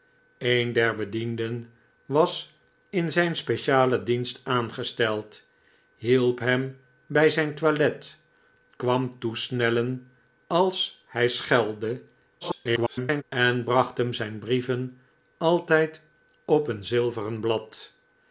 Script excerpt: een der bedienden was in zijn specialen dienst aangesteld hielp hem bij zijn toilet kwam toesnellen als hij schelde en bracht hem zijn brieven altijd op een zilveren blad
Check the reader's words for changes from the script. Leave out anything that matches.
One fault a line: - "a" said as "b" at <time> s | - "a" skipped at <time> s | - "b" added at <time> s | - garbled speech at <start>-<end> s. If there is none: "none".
- garbled speech at 12.4-13.2 s